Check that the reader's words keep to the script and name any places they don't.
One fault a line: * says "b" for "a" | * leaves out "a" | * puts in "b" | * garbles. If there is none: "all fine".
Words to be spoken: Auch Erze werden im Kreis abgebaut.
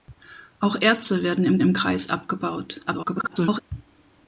* puts in "im"
* garbles